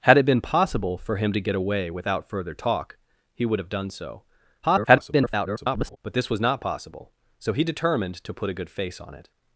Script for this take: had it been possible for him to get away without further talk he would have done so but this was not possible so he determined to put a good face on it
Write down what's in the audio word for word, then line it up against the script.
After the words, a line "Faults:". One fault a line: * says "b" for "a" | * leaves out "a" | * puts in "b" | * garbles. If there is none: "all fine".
had it been possible for him to get away without further talk he would have done so [garbled] but this was not possible so he determined to put a good face on it
Faults:
* garbles